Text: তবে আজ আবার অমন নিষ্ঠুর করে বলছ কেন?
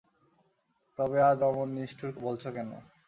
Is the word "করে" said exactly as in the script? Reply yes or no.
no